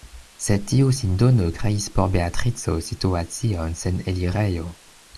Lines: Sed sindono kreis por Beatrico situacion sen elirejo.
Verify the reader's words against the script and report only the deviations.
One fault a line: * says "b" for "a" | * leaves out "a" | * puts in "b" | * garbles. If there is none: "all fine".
* puts in "tiu"